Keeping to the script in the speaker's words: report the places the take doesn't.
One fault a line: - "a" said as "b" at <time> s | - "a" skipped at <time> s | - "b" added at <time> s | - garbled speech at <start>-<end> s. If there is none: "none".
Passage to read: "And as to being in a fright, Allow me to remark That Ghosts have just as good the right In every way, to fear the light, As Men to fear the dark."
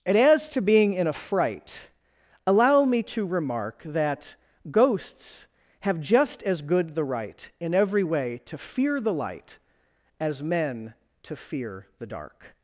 none